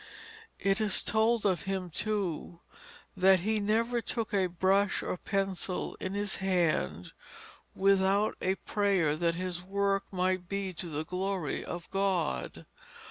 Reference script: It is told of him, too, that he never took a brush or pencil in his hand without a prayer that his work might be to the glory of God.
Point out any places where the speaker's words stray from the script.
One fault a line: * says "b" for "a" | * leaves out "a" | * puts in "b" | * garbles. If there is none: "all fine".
all fine